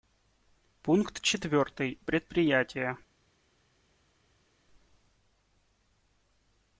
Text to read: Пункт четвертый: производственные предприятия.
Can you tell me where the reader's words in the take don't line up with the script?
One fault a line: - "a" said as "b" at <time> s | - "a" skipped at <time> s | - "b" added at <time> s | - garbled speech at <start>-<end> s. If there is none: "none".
- "производственные" skipped at 2.0 s